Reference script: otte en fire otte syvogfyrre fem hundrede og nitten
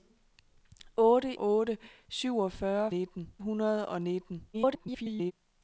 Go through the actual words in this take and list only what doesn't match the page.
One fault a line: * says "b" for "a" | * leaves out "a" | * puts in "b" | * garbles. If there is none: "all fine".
* leaves out "en fire"
* says "nitten" for "fem"
* garbles